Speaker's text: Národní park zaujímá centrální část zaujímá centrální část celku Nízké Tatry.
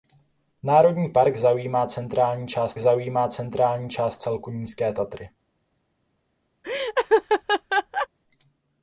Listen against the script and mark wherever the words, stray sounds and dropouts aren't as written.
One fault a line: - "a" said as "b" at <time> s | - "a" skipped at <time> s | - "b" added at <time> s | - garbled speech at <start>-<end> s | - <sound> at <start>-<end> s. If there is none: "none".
- laugh at 6.6-8.1 s